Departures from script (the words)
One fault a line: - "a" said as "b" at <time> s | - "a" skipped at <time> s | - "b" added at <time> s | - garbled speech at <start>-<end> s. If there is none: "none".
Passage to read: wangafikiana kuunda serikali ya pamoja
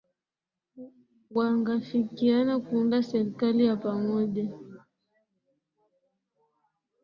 none